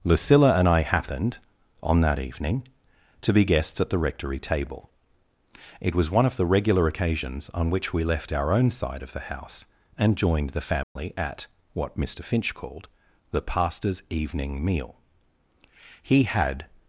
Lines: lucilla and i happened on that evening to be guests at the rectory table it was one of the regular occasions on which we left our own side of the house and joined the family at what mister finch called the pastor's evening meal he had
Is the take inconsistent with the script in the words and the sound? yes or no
yes